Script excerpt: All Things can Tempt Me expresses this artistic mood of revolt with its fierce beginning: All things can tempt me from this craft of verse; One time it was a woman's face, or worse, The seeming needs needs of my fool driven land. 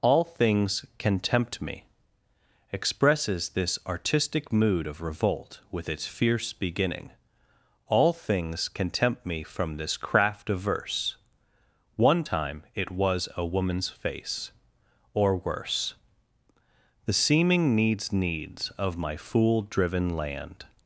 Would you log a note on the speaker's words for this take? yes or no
no